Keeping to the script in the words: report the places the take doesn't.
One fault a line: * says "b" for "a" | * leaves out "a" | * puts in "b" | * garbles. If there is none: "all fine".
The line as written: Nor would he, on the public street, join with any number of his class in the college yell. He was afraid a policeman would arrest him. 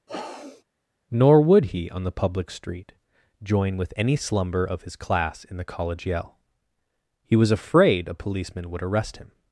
* says "slumber" for "number"